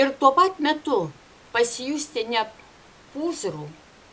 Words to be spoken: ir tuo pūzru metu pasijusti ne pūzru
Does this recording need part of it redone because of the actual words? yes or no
yes